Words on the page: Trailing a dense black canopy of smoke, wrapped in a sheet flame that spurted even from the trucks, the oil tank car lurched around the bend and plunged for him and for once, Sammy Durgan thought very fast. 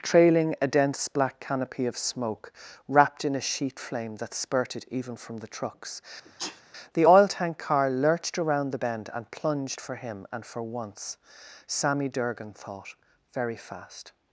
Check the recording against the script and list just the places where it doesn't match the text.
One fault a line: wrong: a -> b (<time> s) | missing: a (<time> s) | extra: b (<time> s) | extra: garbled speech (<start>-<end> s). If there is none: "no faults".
no faults